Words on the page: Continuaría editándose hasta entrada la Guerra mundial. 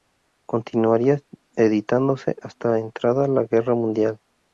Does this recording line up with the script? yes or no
yes